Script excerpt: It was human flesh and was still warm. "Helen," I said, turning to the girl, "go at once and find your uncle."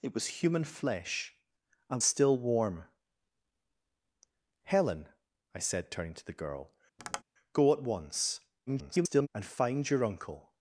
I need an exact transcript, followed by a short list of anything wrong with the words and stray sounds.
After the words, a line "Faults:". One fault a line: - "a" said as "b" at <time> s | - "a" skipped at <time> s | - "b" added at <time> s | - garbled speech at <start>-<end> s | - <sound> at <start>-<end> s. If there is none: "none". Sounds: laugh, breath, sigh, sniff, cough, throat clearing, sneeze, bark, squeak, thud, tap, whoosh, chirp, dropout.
It was human flesh and still warm. "Helen," I said, turning to the girl, "go at once [garbled] and find your uncle."
Faults:
- "was" skipped at 2.0 s
- tap at 7.0-7.2 s
- garbled speech at 8.7-9.3 s